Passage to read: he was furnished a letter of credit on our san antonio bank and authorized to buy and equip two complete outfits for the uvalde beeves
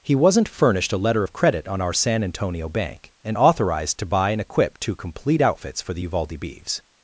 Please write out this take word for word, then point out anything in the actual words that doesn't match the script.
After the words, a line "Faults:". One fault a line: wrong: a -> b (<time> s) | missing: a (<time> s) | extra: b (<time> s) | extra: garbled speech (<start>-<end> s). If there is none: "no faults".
he wasn't furnished a letter of credit on our san antonio bank and authorized to buy and equip two complete outfits for the uvalde beeves
Faults:
wrong: was -> wasn't (0.1 s)